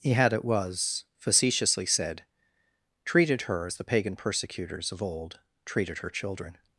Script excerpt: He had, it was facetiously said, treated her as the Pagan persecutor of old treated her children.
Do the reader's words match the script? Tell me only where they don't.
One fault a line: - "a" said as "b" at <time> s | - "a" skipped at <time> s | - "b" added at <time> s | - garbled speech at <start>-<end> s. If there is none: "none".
- "persecutor" said as "persecutors" at 4.2 s